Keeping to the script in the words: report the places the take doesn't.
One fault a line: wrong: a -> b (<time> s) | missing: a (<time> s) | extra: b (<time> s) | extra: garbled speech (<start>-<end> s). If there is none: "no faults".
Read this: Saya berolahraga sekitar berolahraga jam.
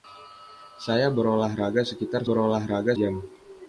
no faults